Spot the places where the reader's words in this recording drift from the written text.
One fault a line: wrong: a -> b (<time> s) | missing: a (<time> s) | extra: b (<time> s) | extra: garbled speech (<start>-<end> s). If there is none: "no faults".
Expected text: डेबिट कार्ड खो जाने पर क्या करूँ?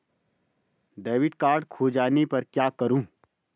no faults